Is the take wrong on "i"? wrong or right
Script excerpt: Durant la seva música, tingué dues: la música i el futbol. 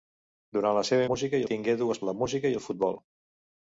right